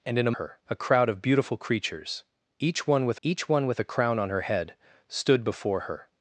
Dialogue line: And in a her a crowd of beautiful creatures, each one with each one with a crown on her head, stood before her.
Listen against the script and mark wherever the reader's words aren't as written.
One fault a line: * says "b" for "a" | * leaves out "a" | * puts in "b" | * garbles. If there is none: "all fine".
all fine